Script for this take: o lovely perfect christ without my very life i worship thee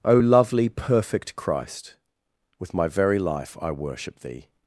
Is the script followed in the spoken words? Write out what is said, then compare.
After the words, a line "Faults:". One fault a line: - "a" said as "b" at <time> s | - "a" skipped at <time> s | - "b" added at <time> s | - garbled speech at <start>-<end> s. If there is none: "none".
o lovely perfect christ with my very life i worship thee
Faults:
- "without" said as "with" at 2.6 s